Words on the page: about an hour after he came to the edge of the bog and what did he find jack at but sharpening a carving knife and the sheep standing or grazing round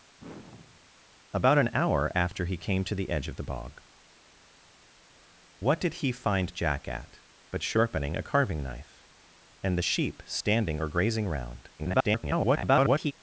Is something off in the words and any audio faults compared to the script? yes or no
yes